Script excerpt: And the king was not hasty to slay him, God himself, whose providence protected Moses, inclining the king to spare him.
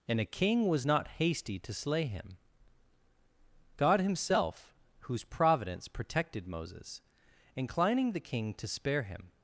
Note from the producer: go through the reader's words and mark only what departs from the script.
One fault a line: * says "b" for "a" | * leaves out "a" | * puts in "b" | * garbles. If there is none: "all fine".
* says "a" for "the"